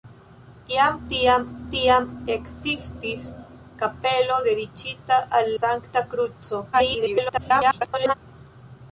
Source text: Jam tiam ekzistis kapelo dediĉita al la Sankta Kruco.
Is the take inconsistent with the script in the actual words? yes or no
yes